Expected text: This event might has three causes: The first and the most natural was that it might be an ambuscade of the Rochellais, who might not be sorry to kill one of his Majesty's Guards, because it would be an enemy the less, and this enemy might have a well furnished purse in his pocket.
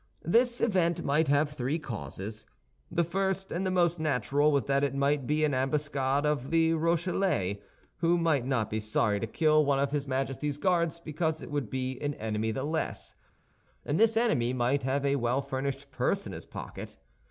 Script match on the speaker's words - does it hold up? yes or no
no